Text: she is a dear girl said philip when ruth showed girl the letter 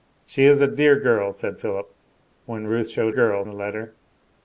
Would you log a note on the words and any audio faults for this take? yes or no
no